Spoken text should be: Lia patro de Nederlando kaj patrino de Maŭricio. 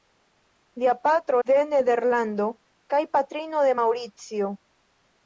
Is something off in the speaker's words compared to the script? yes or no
no